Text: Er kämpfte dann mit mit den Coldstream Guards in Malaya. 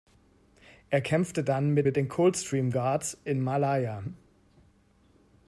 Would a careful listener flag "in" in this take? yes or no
no